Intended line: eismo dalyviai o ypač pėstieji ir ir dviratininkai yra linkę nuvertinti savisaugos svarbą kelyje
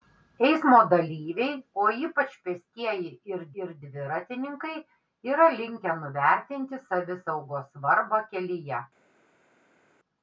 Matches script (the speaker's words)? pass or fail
pass